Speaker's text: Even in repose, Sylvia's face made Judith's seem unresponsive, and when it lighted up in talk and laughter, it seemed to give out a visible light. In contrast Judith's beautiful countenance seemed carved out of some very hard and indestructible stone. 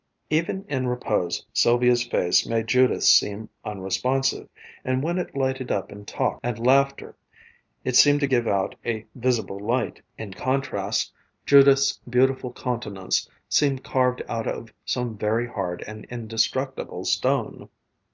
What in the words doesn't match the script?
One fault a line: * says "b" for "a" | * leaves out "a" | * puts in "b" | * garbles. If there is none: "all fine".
all fine